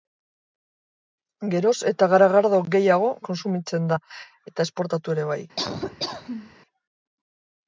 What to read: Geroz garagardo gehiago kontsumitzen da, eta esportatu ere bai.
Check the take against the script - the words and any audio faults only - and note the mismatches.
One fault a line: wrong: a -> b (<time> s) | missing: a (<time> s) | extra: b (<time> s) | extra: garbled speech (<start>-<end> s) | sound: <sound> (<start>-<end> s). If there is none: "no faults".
extra: eta (1.9 s)
sound: laugh (5.6-6.6 s)